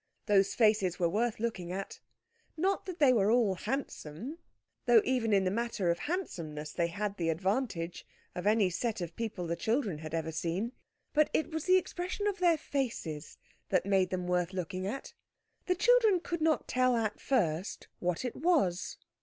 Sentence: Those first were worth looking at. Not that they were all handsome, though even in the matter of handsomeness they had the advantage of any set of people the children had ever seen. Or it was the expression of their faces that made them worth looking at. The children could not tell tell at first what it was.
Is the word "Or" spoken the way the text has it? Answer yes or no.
no